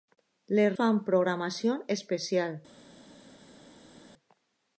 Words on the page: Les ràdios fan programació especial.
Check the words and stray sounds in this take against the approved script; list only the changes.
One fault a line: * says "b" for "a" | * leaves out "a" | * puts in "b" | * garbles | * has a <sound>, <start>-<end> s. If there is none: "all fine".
* leaves out "ràdios"